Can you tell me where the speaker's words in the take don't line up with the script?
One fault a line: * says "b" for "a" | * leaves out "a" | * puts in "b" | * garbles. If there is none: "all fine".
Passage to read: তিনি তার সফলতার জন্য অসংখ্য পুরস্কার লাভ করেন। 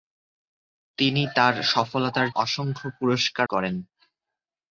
* leaves out "জন্য"
* leaves out "লাভ"